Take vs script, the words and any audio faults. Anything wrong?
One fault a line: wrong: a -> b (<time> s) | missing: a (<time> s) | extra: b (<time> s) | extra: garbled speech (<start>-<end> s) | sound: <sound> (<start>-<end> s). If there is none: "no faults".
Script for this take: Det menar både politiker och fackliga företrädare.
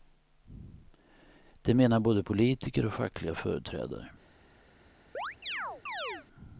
sound: chirp (5.1-6.3 s)